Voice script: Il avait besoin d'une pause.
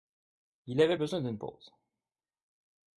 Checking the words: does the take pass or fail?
pass